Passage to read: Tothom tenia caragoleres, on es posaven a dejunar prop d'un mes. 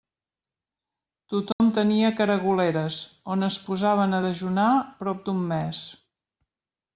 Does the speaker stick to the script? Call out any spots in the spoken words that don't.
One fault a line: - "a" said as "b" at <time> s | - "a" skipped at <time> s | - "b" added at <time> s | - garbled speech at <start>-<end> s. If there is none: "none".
none